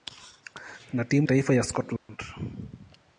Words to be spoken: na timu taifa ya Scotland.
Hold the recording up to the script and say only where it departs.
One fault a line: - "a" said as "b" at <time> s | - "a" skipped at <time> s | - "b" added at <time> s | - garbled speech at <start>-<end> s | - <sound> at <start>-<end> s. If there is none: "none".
- dropout at 2.0-2.1 s